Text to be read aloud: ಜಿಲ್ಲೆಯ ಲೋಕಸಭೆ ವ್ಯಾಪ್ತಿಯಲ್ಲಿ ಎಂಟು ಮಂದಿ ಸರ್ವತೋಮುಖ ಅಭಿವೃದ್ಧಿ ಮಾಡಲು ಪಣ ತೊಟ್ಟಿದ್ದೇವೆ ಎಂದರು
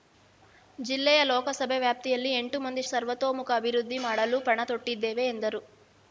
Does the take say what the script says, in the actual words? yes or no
yes